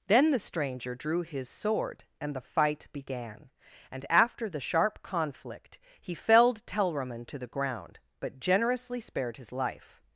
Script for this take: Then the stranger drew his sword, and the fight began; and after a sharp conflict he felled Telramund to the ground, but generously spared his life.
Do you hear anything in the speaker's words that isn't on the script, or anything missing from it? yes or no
yes